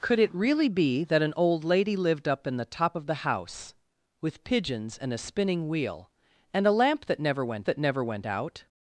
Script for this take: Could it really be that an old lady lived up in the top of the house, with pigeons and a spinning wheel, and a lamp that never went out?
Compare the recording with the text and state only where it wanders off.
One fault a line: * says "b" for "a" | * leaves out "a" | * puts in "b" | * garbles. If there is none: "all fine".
* puts in "that never went"